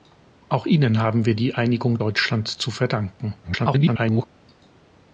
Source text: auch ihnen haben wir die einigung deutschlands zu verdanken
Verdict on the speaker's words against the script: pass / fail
fail